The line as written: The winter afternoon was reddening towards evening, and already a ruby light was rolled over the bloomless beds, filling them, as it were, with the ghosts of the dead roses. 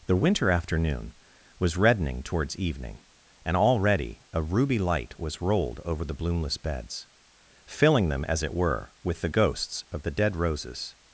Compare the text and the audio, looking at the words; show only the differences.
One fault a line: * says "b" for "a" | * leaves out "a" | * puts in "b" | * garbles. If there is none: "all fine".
all fine